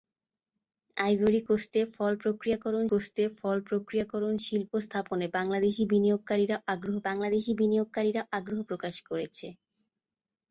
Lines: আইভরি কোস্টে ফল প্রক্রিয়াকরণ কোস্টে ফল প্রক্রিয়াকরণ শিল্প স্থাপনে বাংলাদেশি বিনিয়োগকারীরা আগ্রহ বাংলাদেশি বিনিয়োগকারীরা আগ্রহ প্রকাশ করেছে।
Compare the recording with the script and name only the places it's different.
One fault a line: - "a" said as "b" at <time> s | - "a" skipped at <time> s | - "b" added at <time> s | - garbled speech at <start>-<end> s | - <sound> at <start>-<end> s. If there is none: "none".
none